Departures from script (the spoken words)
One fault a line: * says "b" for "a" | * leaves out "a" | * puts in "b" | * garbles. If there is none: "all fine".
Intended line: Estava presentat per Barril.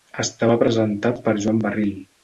* puts in "Joan"